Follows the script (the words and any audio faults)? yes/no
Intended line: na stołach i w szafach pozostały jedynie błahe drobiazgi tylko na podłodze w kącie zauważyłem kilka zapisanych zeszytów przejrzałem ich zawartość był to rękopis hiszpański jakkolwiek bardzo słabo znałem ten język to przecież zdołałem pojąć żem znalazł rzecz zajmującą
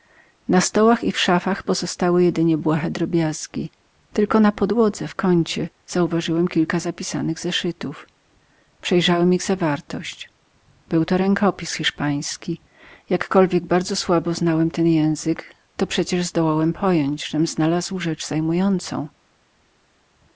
yes